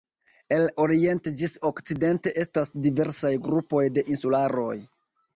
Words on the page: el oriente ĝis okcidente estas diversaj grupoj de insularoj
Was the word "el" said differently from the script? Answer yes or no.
no